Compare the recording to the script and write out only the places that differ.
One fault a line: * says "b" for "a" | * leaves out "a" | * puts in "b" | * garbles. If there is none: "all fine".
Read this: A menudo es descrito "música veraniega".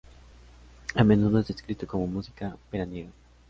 * puts in "como"